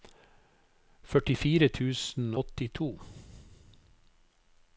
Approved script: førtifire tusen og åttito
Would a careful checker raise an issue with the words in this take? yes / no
yes